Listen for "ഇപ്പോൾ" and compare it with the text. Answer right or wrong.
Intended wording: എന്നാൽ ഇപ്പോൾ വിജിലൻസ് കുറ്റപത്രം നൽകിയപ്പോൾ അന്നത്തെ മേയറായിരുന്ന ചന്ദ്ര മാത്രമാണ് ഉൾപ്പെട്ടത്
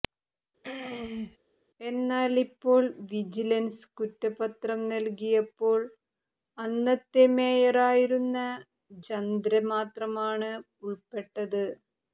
right